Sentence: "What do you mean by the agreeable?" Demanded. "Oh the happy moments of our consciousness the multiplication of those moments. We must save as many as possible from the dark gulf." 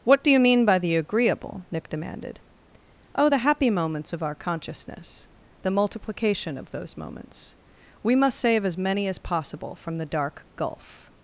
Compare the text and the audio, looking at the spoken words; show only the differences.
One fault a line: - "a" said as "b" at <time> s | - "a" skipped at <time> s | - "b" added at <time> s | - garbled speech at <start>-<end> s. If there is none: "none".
- "Nick" added at 1.7 s